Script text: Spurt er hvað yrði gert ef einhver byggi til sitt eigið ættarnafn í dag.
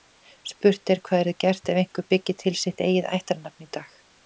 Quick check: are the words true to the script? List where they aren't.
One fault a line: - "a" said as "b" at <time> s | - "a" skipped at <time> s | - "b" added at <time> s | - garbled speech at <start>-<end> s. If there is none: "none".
none